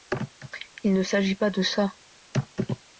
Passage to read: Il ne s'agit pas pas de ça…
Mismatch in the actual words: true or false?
true